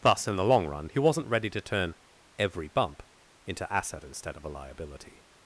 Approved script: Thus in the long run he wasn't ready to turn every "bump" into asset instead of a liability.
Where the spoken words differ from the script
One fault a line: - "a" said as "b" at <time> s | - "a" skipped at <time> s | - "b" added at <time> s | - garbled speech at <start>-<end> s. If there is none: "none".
none